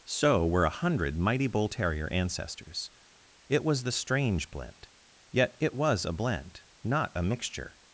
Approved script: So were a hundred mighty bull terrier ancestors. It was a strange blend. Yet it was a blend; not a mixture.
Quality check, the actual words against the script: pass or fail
fail